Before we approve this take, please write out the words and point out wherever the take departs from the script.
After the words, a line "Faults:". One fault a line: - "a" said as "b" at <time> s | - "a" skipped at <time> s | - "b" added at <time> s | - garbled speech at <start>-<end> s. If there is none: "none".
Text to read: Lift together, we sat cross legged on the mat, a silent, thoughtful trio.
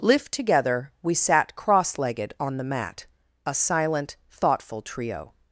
Lift together, we sat cross legged on the mat, a silent, thoughtful trio.
Faults:
none